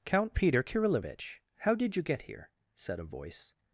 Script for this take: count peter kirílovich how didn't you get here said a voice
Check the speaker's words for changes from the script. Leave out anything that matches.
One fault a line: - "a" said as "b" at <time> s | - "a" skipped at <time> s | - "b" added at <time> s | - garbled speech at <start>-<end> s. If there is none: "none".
- "didn't" said as "did" at 1.7 s